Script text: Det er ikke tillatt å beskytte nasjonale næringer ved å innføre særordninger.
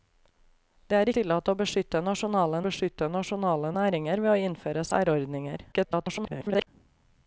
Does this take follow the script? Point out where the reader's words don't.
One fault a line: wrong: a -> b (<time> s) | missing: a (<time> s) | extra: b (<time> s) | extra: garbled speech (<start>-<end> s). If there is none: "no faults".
missing: ikke (1.1 s)
extra: beskytte nasjonale (2.6 s)
extra: garbled speech (5.7-6.7 s)